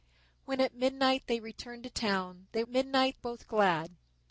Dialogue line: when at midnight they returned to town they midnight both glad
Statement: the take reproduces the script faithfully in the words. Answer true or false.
true